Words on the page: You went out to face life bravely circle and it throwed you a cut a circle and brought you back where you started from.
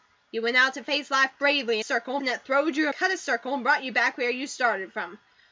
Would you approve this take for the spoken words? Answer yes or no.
yes